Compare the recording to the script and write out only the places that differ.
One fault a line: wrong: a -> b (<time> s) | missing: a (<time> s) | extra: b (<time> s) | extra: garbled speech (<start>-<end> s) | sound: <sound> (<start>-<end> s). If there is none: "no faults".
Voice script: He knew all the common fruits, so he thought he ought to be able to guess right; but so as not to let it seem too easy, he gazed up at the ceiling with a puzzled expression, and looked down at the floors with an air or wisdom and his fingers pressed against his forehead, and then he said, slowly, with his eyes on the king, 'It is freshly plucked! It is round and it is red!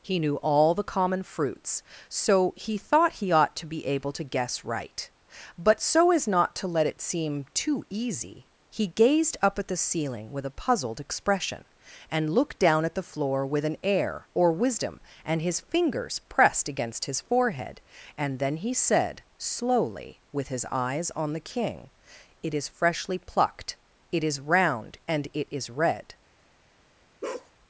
wrong: floors -> floor (13.0 s)
sound: bark (27.2-27.5 s)